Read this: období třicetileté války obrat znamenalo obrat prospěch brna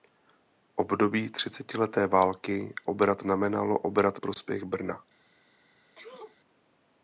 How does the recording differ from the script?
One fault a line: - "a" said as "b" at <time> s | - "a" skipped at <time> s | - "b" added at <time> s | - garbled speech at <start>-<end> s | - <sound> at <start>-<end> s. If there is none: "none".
- sneeze at 6.0-6.4 s